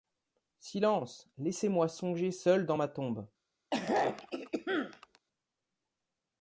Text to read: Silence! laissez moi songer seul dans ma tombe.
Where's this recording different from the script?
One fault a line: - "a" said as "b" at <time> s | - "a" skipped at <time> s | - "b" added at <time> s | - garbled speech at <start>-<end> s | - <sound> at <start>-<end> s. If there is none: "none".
- throat clearing at 3.7-5.2 s